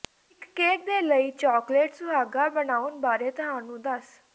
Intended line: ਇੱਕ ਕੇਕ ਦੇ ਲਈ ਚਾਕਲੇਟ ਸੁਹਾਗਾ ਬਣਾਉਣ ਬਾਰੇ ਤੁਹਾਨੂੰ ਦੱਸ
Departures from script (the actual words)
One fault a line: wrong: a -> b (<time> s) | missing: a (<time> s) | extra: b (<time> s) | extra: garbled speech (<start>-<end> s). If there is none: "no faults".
no faults